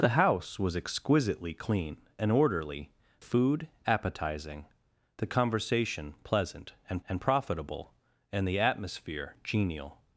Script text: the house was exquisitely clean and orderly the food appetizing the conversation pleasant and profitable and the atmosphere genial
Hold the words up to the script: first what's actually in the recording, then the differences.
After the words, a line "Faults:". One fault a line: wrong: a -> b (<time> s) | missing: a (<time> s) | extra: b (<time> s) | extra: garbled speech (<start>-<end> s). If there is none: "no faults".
the house was exquisitely clean and orderly food appetizing the conversation pleasant and and profitable and the atmosphere genial
Faults:
missing: the (2.9 s)
extra: and (7.1 s)